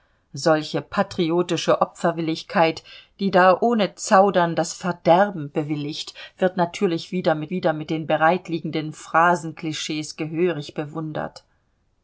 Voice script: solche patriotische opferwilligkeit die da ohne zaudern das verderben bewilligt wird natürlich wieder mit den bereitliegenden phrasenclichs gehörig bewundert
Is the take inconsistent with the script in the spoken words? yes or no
yes